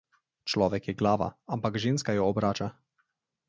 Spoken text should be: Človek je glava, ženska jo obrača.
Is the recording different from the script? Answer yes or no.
yes